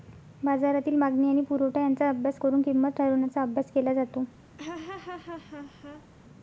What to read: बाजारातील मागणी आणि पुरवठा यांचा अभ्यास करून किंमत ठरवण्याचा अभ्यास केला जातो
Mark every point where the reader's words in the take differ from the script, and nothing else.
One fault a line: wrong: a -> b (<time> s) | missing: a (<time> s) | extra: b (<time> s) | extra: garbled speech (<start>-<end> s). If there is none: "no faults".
no faults